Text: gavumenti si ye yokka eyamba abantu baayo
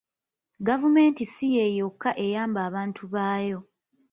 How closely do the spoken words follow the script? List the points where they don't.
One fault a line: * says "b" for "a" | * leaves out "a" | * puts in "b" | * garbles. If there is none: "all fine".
all fine